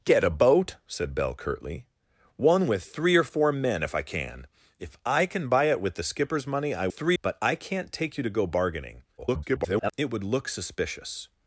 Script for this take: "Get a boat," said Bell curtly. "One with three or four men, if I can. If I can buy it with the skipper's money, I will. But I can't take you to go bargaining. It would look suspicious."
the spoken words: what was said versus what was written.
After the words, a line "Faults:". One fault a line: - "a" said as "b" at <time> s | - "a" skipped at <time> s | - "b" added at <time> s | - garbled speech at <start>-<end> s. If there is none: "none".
"Get a boat," said Bell curtly. "One with three or four men, if I can. If I can buy it with the skipper's money, I three. But I can't take you to go bargaining. [garbled] It would look suspicious."
Faults:
- "will" said as "three" at 6.9 s
- garbled speech at 9.2-9.9 s